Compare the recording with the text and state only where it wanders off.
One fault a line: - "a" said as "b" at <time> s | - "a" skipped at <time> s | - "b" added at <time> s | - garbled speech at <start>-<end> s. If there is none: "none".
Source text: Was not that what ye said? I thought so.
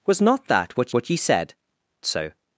- "what" added at 0.9 s
- "I thought" skipped at 1.5 s